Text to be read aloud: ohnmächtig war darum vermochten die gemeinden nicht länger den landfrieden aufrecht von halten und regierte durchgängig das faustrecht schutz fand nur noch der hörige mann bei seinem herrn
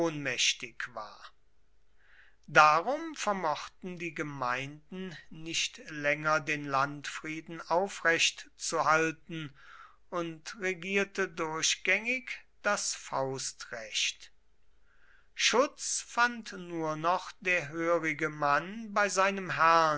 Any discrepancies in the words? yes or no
yes